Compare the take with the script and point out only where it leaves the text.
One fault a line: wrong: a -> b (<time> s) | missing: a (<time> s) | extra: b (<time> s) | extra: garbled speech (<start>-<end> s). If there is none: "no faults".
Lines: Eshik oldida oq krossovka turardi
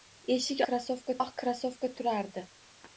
wrong: oldida -> krossovka (0.7 s)